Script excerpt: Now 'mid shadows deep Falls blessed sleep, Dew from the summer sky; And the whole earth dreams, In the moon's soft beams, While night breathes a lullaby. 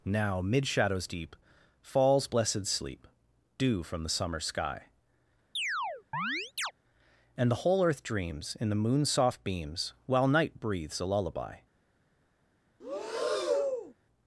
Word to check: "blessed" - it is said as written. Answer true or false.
true